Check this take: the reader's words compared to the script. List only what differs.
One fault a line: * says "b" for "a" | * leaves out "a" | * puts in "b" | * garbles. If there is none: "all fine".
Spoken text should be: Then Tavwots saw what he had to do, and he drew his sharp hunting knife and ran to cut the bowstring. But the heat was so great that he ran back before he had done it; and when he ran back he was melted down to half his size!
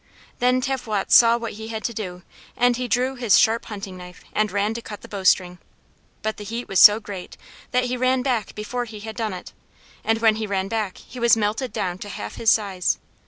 all fine